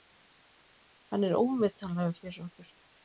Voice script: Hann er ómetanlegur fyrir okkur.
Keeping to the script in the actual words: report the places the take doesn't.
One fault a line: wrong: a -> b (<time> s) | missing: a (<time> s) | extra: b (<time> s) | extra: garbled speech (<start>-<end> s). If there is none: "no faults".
no faults